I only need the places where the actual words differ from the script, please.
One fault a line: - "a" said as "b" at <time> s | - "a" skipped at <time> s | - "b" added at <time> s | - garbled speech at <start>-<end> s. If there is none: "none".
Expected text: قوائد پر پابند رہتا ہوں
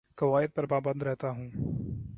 none